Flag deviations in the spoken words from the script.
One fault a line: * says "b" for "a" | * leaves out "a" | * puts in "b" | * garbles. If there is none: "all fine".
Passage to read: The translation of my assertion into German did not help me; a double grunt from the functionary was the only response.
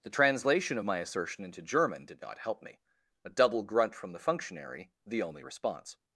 * leaves out "was"